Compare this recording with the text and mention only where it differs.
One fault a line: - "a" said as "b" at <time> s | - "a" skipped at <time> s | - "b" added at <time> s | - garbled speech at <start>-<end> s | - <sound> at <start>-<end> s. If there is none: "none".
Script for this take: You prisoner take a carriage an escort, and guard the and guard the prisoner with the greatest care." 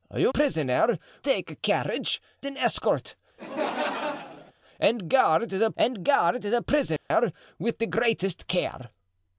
- laugh at 3.4-4.5 s
- dropout at 7.0-7.1 s